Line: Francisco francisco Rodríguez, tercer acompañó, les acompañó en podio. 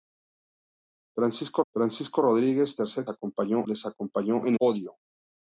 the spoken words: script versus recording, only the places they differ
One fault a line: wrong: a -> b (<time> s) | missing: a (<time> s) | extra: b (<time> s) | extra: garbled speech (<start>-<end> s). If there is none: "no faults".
no faults